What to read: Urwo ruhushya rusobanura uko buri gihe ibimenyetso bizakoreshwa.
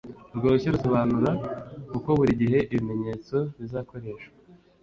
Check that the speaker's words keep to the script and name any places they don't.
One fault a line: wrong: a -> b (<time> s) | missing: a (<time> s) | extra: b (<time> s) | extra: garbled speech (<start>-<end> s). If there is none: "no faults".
no faults